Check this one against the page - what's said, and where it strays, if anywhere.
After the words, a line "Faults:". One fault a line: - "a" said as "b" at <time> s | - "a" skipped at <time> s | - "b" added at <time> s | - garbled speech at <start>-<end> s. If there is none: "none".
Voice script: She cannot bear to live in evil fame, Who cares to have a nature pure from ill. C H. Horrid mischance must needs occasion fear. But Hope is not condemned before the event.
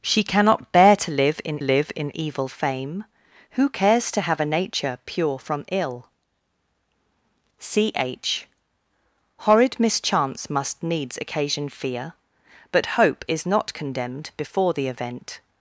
She cannot bear to live in live in evil fame, Who cares to have a nature pure from ill. C H. Horrid mischance must needs occasion fear. But Hope is not condemned before the event.
Faults:
- "live in" added at 1.6 s